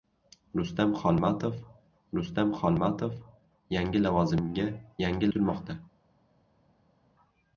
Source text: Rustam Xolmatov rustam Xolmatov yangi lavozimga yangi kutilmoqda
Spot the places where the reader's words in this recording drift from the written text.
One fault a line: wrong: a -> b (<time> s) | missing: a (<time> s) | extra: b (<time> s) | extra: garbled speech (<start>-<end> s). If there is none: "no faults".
no faults